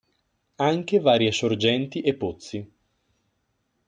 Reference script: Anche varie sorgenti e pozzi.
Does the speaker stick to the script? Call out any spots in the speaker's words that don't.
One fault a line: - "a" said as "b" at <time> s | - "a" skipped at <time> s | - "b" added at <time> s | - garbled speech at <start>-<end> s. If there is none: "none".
none